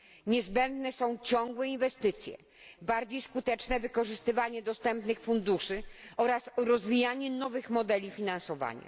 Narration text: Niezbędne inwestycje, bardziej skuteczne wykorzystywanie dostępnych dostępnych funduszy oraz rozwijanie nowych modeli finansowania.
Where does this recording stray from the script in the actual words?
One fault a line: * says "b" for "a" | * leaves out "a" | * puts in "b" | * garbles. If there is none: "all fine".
* puts in "są ciągłe"
* leaves out "dostępnych"